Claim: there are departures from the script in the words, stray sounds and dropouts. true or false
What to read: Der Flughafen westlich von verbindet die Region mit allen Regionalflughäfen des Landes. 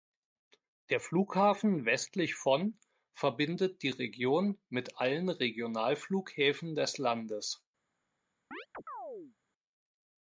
true